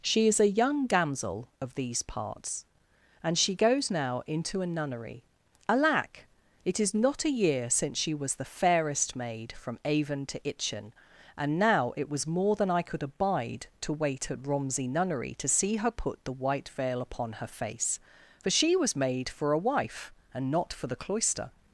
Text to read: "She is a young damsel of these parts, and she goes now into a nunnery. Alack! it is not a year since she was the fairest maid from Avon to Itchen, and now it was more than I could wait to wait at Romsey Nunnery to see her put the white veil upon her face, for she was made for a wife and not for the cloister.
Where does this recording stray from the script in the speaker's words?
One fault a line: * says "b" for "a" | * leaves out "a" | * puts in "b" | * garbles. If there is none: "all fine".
* says "abide" for "wait"